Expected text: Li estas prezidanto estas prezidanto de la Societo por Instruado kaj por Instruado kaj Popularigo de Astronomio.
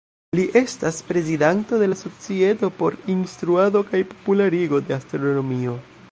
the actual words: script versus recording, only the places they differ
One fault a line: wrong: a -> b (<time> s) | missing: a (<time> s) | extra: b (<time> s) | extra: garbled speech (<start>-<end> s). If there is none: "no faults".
missing: estas prezidanto (1.8 s)
missing: por Instruado kaj (4.0 s)